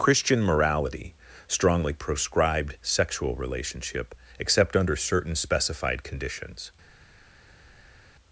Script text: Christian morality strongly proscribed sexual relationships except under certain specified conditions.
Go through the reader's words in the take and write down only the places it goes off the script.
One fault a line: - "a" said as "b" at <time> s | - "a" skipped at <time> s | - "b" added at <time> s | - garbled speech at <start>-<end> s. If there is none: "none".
- "relationships" said as "relationship" at 3.4 s